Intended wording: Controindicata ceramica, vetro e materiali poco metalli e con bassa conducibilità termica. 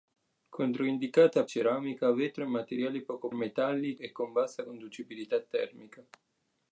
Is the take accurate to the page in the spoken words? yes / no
yes